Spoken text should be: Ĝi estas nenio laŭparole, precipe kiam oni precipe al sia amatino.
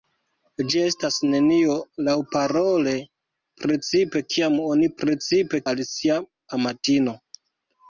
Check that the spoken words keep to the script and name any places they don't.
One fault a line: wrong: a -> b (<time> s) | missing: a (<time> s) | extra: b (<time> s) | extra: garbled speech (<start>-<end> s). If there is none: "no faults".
no faults